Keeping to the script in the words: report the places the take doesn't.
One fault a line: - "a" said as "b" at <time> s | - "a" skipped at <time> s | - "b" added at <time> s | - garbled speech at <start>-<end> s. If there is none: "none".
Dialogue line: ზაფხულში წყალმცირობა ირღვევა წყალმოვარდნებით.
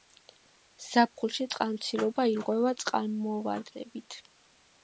none